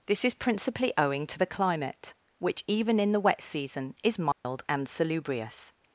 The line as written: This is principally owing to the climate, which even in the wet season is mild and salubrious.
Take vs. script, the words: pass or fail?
pass